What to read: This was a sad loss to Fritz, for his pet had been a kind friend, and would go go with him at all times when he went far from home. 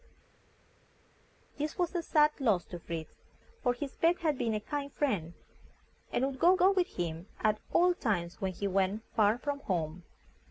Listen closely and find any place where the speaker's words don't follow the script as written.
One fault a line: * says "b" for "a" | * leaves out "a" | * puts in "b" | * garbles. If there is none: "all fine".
all fine